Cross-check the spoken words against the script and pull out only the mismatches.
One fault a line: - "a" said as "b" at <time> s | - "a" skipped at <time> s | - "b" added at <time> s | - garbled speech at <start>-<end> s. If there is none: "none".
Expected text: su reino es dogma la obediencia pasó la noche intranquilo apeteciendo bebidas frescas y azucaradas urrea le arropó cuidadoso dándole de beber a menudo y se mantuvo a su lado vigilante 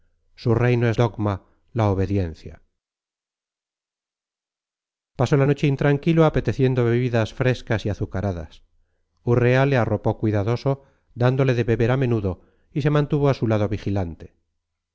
none